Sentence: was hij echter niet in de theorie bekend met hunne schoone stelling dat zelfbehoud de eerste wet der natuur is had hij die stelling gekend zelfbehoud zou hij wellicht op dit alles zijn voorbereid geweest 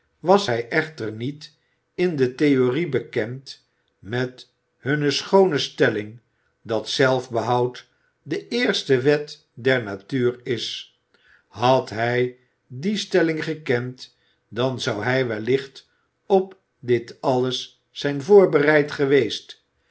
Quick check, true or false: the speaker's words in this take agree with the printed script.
false